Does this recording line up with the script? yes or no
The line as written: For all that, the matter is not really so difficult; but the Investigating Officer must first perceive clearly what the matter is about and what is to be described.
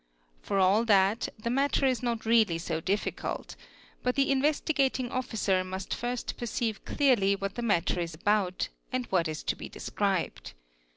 yes